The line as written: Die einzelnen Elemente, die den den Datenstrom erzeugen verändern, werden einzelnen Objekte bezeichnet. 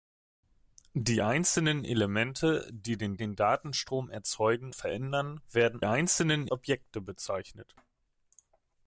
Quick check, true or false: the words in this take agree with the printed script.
true